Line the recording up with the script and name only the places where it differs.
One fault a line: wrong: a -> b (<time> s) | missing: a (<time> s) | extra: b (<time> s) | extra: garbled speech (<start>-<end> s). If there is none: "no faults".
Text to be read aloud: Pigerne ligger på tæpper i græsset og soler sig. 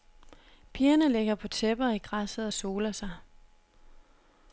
no faults